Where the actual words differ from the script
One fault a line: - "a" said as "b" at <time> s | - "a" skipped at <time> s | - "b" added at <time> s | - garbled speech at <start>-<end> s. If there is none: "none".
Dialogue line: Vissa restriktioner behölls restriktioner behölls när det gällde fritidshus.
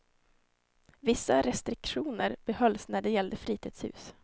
- "restriktioner behölls" skipped at 2.9 s